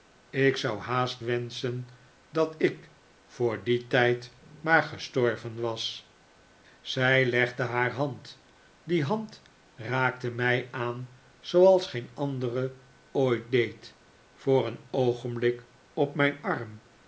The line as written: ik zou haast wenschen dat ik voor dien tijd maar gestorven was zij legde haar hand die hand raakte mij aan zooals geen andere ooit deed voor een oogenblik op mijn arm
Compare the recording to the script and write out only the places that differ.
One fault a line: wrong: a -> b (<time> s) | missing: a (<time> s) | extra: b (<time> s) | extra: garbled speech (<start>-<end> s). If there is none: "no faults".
no faults